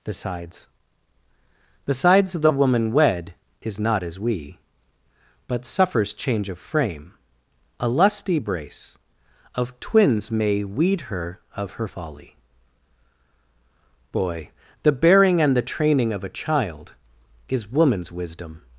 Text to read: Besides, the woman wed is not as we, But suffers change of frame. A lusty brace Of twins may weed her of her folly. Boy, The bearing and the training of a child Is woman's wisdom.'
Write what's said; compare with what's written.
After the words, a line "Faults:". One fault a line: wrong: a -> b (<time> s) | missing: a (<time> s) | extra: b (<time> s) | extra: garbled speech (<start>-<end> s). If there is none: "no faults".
Besides besides, the woman wed is not as we, But suffers change of frame. A lusty brace Of twins may weed her of her folly. Boy, The bearing and the training of a child Is woman's wisdom.'
Faults:
extra: besides (1.9 s)